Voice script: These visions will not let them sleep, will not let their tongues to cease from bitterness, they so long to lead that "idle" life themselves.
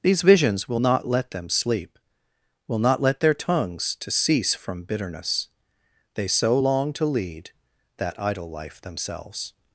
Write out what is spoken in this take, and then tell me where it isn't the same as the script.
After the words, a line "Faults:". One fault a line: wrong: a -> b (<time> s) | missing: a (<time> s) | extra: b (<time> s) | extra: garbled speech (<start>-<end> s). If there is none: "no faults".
These visions will not let them sleep, will not let their tongues to cease from bitterness, they so long to lead that "idle" life themselves.
Faults:
no faults